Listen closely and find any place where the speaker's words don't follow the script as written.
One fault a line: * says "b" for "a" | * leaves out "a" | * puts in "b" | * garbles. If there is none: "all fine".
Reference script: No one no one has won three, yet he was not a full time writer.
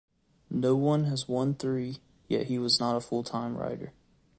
* leaves out "no one"